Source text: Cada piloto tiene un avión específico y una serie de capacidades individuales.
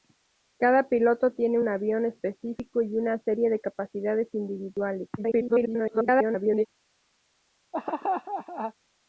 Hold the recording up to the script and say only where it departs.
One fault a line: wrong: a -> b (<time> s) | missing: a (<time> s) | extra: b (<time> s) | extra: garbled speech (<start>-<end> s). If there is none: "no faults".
extra: garbled speech (5.2-6.7 s)